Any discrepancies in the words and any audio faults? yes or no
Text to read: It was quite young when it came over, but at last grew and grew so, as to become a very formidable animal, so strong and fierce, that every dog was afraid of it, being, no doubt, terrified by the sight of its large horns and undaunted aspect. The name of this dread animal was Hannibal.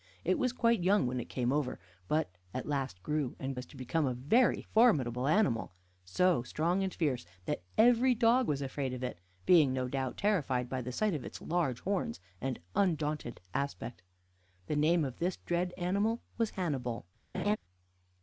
yes